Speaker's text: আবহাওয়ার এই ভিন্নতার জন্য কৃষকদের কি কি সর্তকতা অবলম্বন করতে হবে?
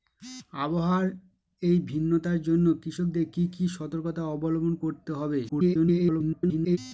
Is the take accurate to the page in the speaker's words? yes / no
no